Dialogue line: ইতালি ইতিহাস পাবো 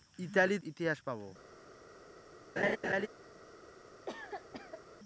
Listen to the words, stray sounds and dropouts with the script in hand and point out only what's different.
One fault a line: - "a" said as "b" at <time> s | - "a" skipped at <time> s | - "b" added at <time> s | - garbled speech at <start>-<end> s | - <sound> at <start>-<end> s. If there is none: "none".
- laugh at 2.6-3.1 s
- cough at 4.1-4.8 s